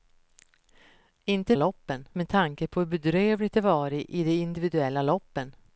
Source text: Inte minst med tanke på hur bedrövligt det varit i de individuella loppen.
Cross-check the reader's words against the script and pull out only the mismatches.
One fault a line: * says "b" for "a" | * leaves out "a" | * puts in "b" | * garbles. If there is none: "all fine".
* says "loppen" for "minst"